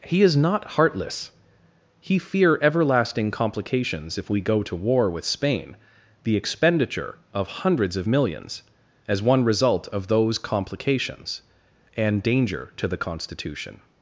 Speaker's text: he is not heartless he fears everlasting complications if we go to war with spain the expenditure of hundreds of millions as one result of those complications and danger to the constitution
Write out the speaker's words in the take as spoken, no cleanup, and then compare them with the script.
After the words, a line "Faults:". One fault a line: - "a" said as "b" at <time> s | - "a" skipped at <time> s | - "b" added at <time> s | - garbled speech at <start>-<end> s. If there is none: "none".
he is not heartless he fear everlasting complications if we go to war with spain the expenditure of hundreds of millions as one result of those complications and danger to the constitution
Faults:
- "fears" said as "fear" at 2.2 s